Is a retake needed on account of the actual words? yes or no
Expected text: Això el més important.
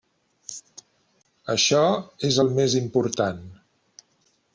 yes